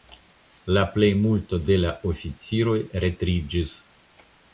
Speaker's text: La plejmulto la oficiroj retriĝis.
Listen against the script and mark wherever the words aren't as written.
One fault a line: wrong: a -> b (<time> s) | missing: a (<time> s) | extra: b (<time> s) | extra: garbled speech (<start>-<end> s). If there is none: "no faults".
extra: de (1.7 s)